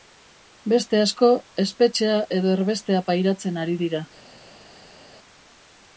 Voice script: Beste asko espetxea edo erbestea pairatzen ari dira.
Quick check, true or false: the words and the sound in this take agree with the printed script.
true